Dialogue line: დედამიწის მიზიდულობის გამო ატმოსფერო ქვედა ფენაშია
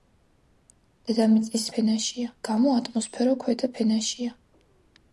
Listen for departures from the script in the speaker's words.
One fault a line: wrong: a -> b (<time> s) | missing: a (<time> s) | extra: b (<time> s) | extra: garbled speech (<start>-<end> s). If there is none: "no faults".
wrong: მიზიდულობის -> ფენაშია (1.8 s)